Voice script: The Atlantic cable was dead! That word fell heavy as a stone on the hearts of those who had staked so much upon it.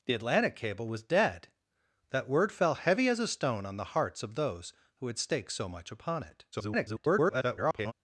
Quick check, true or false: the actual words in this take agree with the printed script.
false